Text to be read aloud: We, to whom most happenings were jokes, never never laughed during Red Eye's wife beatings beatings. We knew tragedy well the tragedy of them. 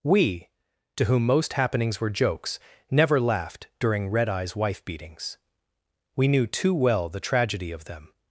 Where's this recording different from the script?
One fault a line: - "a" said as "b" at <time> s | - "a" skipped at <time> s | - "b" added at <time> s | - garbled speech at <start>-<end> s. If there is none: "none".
- "never" skipped at 3.2 s
- "beatings" skipped at 5.4 s
- "tragedy" said as "too" at 6.5 s